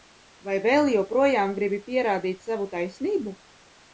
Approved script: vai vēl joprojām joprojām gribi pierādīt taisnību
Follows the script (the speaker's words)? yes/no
no